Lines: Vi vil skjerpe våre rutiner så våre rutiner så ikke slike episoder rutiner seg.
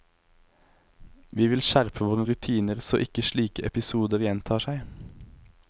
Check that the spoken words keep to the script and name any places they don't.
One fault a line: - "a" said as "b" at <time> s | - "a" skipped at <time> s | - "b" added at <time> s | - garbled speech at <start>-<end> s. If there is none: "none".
- "våre rutiner så" skipped at 3.0 s
- "rutiner" said as "gjentar" at 4.2 s